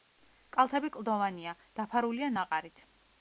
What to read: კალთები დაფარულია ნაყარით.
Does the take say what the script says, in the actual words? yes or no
no